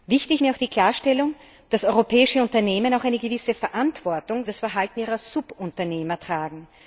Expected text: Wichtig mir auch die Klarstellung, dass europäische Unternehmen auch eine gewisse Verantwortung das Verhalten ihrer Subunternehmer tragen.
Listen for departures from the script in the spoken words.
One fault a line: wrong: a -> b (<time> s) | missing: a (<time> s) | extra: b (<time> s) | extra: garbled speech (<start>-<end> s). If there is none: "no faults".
no faults